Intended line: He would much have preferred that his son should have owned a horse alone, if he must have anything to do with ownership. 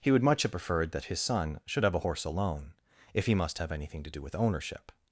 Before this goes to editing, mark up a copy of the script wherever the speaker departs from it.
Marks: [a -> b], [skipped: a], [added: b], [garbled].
He would much have preferred that his son should have [skipped: owned] a horse alone, if he must have anything to do with ownership.